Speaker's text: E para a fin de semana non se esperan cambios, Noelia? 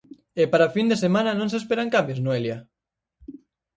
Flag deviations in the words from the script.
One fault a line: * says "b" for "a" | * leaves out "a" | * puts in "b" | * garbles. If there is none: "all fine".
all fine